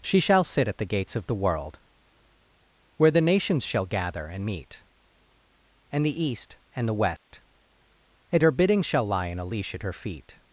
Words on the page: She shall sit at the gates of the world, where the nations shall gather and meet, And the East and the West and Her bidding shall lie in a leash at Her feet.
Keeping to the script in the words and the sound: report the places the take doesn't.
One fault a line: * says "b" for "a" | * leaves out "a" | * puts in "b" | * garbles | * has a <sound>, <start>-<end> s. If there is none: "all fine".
* has a dropout, 7.2-7.3 s